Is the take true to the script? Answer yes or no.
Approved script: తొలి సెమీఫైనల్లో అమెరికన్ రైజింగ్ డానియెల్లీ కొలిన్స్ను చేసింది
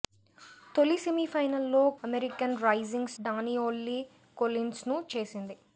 yes